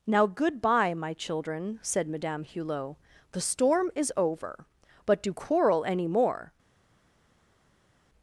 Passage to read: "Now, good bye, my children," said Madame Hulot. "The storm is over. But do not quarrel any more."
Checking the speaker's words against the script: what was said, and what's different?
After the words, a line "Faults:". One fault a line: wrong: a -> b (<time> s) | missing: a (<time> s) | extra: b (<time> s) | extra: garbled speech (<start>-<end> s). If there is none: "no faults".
"Now, good bye, my children," said Madame Hulot. "The storm is over. But do quarrel any more."
Faults:
missing: not (5.3 s)